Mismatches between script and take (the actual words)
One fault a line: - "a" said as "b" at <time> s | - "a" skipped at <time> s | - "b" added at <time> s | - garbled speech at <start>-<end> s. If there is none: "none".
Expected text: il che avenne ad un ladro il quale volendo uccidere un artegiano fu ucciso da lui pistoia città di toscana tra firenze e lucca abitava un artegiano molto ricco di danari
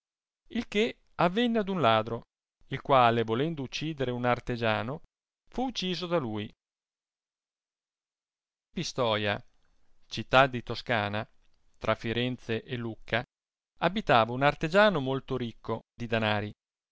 none